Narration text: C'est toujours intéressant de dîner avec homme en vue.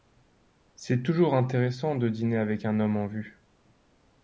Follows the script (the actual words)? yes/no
no